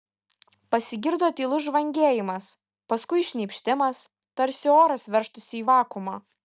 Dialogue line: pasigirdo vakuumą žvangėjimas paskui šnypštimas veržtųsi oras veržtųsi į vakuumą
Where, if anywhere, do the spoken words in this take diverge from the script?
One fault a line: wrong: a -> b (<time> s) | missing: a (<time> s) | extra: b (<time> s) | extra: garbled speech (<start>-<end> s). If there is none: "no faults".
wrong: vakuumą -> tylus (1.4 s)
wrong: veržtųsi -> tarsi (4.4 s)